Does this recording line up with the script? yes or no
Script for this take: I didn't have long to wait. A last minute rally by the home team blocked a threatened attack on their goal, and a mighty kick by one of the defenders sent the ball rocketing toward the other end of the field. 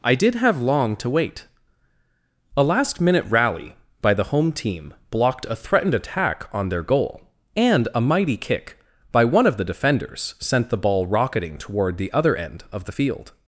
no